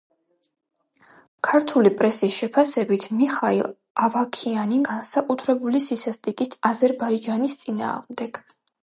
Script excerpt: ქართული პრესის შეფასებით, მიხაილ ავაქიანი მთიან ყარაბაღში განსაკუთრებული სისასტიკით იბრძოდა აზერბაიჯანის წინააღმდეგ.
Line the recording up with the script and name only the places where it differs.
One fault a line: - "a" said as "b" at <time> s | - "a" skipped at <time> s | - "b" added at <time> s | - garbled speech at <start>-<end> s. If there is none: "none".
- "მთიან ყარაბაღში" skipped at 4.8 s
- "იბრძოდა" skipped at 6.6 s